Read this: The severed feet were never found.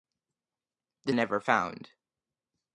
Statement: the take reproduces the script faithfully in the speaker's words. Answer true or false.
false